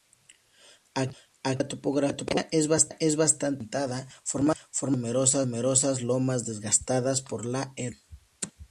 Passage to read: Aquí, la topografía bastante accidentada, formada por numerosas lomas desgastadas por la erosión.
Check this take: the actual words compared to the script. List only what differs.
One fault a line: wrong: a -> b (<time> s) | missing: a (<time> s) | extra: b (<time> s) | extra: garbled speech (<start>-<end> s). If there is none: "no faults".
extra: es (2.5 s)